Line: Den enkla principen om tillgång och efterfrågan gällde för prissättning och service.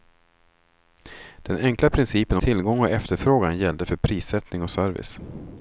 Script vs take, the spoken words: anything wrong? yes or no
yes